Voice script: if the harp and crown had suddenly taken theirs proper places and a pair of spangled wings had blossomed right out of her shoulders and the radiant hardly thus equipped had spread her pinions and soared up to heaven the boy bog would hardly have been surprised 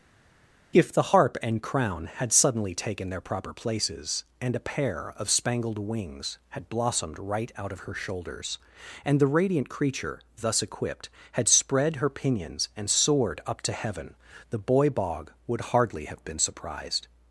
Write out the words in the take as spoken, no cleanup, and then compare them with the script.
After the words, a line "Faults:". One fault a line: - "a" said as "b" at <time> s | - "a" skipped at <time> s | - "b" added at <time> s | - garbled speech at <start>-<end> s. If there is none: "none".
if the harp and crown had suddenly taken their proper places and a pair of spangled wings had blossomed right out of her shoulders and the radiant creature thus equipped had spread her pinions and soared up to heaven the boy bog would hardly have been surprised
Faults:
- "theirs" said as "their" at 3.1 s
- "hardly" said as "creature" at 9.7 s